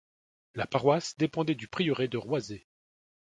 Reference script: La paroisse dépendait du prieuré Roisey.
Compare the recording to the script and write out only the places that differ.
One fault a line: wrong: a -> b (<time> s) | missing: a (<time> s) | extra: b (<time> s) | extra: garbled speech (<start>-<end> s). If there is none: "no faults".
extra: de (2.1 s)